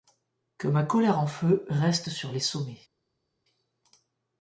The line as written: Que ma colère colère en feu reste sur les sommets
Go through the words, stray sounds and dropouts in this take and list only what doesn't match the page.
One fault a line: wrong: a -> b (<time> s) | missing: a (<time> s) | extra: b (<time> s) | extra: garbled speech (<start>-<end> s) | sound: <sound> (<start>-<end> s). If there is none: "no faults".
missing: colère (1.2 s)